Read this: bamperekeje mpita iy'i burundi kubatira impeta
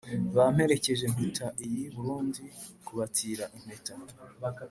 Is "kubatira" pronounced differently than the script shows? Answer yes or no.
no